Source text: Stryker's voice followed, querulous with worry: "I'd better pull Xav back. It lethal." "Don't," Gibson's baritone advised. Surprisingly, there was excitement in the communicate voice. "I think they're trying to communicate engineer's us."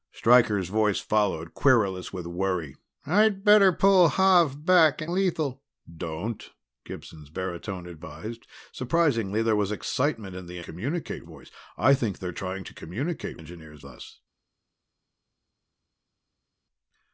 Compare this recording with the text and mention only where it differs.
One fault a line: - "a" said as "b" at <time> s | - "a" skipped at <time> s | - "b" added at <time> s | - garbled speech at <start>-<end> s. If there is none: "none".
none